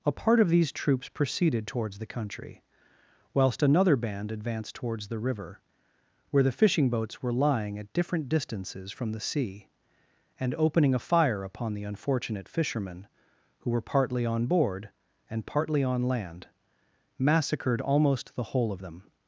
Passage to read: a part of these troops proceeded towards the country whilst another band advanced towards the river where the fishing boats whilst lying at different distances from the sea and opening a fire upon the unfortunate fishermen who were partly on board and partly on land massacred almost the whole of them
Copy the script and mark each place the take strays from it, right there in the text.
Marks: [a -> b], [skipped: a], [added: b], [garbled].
a part of these troops proceeded towards the country whilst another band advanced towards the river where the fishing boats [whilst -> were] lying at different distances from the sea and opening a fire upon the unfortunate fishermen who were partly on board and partly on land massacred almost the whole of them